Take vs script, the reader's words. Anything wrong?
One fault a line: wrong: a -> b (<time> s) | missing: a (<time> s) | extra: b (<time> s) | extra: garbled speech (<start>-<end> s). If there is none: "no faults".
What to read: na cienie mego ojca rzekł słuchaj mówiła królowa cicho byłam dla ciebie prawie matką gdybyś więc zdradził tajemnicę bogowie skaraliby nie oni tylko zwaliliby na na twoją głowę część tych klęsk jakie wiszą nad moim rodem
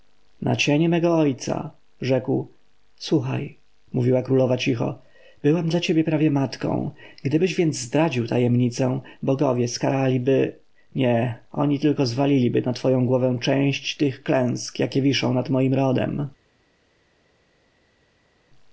missing: na (12.7 s)